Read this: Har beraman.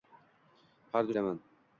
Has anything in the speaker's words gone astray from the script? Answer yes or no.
no